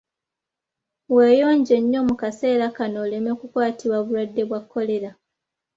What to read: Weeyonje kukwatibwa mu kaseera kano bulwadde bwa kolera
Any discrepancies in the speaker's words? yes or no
yes